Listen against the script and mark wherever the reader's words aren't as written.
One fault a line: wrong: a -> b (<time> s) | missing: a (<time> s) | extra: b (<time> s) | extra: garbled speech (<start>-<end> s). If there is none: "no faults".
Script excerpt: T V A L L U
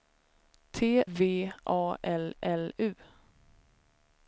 no faults